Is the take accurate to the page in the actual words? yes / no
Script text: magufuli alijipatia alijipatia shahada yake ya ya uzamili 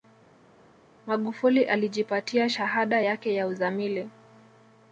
no